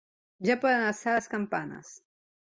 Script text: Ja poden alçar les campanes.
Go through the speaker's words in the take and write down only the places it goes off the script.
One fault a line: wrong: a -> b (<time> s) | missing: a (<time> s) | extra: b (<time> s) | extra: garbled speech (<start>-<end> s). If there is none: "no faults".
no faults